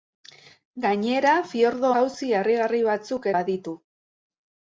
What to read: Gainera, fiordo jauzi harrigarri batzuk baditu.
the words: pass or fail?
pass